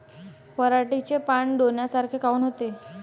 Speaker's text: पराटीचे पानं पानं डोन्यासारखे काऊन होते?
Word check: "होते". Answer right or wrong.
right